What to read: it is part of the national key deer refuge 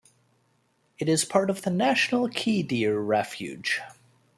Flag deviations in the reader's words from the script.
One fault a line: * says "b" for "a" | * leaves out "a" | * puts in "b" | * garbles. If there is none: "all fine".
all fine